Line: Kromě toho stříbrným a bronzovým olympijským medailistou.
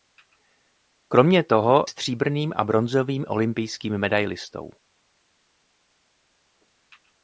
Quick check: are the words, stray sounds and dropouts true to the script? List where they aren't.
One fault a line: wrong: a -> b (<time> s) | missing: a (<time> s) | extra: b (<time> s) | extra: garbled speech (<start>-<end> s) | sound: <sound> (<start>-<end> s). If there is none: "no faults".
no faults